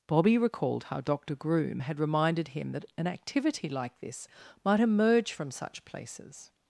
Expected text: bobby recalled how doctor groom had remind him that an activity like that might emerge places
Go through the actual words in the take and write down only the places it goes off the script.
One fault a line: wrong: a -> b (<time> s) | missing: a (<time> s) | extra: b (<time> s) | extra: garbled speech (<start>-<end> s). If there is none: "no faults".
wrong: remind -> reminded (2.0 s)
wrong: that -> this (4.0 s)
extra: from such (5.3 s)